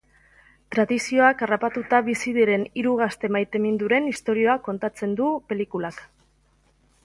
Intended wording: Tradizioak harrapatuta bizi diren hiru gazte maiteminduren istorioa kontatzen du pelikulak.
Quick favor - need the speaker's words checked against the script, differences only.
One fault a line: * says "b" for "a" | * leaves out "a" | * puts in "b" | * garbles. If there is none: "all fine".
all fine